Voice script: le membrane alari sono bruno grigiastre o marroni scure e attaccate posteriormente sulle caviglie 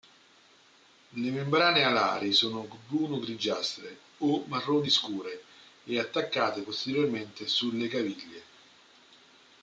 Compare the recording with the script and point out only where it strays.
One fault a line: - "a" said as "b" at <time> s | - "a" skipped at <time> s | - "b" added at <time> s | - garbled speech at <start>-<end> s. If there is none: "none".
none